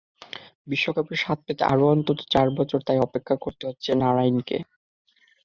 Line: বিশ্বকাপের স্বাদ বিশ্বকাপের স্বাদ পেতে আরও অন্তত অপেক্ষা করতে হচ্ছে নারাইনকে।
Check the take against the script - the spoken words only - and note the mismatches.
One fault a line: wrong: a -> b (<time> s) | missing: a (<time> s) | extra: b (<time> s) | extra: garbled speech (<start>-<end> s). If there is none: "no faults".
missing: বিশ্বকাপের স্বাদ (1.4 s)
extra: চার বছর তাই (2.3 s)